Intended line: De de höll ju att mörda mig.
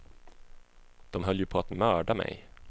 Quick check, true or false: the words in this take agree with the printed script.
false